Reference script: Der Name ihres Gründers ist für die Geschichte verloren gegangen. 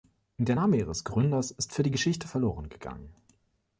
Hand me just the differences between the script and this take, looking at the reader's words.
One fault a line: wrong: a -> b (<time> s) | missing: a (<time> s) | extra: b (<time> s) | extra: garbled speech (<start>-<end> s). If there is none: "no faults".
no faults